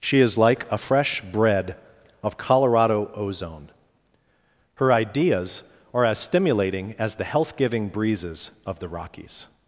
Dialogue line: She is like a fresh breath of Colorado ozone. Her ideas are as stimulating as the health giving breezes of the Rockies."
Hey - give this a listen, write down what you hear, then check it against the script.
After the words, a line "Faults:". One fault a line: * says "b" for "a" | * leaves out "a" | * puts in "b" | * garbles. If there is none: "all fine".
She is like a fresh bread of Colorado ozone. Her ideas are as stimulating as the health giving breezes of the Rockies."
Faults:
* says "bread" for "breath"